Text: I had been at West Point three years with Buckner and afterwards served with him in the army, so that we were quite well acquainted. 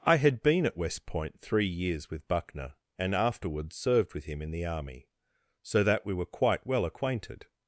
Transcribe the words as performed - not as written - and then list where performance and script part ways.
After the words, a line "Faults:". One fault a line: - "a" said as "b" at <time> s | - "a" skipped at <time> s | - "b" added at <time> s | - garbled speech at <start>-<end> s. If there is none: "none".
I had been at West Point three years with Buckner and afterwards served with him in the army, so that we were quite well acquainted.
Faults:
none